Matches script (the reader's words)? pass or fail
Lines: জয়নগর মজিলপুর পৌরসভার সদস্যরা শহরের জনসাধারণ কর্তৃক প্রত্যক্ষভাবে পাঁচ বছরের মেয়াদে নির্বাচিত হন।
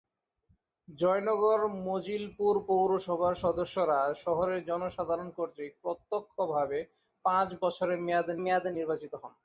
fail